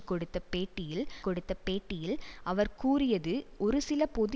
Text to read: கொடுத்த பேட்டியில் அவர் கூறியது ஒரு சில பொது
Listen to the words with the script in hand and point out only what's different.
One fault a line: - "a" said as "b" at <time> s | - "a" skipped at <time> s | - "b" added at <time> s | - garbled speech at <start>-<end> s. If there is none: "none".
- "கொடுத்த பேட்டியில்" added at 1.2 s